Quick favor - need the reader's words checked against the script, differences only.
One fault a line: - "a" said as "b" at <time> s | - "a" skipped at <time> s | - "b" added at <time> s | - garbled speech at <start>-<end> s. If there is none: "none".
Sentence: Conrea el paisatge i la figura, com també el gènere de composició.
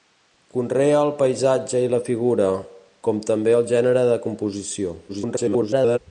- garbled speech at 5.1-6.0 s